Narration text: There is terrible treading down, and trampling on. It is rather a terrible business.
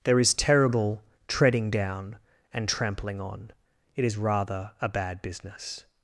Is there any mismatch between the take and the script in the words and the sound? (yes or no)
yes